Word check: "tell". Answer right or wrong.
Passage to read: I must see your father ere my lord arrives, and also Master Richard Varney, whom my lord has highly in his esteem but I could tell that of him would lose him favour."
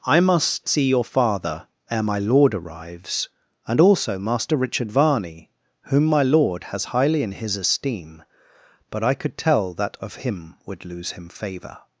right